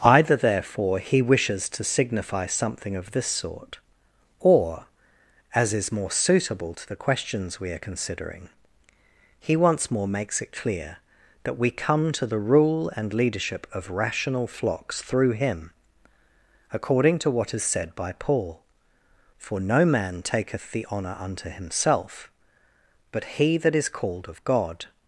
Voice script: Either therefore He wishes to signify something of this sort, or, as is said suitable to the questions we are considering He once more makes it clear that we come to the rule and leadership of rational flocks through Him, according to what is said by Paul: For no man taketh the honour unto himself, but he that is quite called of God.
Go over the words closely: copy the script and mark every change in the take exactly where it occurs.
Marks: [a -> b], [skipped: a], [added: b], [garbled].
Either therefore He wishes to signify something of this sort, or, as is [said -> more] suitable to the questions we are considering He once more makes it clear that we come to the rule and leadership of rational flocks through Him, according to what is said by Paul: For no man taketh the honour unto himself, but he that is [skipped: quite] called of God.